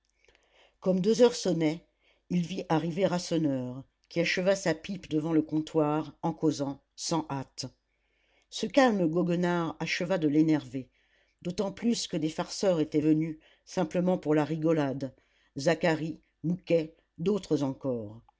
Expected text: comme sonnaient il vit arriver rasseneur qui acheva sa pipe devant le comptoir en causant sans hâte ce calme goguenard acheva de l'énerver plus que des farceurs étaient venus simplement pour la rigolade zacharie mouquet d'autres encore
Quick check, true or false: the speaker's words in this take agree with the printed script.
false